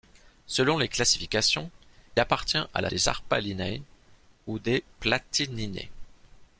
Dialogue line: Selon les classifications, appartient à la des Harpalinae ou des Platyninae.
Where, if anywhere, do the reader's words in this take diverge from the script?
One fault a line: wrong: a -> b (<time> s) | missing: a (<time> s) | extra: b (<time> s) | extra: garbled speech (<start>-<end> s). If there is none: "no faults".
no faults